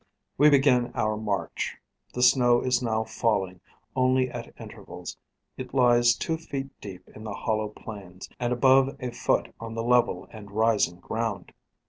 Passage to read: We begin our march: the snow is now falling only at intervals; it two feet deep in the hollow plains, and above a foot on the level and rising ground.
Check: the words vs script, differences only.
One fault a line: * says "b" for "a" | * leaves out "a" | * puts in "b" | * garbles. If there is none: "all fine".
* puts in "lies"